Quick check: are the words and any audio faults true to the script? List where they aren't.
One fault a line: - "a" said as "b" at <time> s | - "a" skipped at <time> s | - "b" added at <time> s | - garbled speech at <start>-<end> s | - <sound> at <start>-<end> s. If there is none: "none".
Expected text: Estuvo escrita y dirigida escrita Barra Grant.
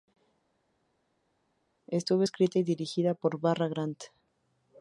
- "escrita" said as "por" at 3.1 s